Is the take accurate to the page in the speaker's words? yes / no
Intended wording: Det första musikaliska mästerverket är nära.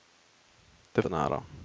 no